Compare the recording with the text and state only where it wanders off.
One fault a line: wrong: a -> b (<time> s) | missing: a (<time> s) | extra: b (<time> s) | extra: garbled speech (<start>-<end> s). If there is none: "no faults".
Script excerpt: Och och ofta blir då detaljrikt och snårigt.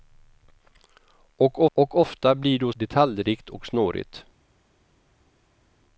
no faults